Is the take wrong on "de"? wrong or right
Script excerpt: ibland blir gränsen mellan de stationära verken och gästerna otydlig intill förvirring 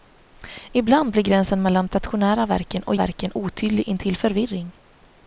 wrong